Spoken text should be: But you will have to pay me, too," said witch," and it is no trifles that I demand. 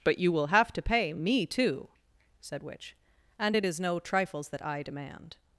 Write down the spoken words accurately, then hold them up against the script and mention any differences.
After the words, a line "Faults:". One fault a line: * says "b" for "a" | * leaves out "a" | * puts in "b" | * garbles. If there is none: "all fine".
But you will have to pay me, too," said witch," and it is no trifles that I demand.
Faults:
all fine